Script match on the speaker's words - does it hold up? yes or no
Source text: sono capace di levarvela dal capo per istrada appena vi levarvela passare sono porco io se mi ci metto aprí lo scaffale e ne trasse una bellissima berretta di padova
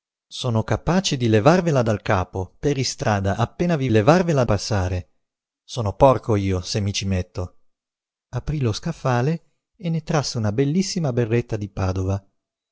yes